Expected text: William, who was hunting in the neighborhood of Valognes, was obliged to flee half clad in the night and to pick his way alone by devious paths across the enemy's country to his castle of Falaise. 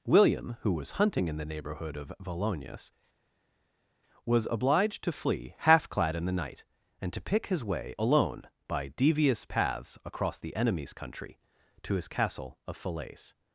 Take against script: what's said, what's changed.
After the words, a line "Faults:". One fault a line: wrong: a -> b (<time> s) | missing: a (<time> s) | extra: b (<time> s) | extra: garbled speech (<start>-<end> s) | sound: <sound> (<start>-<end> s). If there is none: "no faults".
William, who was hunting in the neighborhood of Valognes, was obliged to flee half clad in the night and to pick his way alone by devious paths across the enemy's country to his castle of Falaise.
Faults:
no faults